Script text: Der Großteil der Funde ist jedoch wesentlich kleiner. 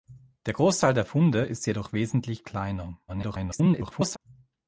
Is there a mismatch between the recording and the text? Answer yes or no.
yes